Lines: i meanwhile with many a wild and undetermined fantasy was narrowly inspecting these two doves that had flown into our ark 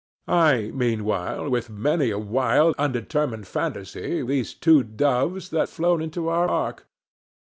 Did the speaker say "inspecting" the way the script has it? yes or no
no